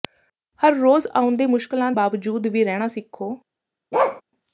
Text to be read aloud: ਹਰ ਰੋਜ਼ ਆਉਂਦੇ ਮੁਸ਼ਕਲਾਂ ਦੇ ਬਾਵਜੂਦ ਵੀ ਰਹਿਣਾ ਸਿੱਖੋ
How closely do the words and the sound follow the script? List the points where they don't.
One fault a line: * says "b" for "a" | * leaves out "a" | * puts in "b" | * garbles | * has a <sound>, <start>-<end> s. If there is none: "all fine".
* leaves out "ਦੇ"
* has a bark, 3.9-4.2 s